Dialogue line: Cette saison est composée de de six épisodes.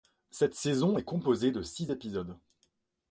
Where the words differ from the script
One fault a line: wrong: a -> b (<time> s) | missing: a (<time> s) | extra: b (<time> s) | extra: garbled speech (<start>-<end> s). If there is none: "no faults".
missing: de (1.6 s)